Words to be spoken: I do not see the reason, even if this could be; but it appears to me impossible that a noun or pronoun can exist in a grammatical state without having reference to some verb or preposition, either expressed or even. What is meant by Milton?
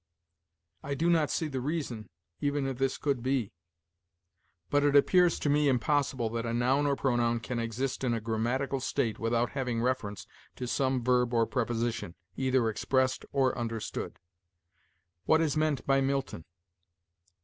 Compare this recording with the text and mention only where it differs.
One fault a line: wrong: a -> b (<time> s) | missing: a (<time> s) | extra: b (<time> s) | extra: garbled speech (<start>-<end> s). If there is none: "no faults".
wrong: even -> understood (13.6 s)